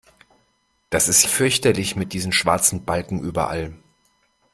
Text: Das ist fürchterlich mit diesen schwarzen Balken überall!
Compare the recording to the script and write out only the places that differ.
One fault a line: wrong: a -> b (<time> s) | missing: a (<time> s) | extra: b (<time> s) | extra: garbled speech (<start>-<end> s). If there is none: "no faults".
no faults